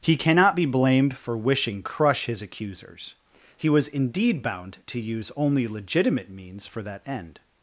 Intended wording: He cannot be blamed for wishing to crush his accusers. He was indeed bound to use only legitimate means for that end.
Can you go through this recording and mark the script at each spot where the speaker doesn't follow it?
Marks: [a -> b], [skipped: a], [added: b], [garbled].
He cannot be blamed for wishing [skipped: to] crush his accusers. He was indeed bound to use only legitimate means for that end.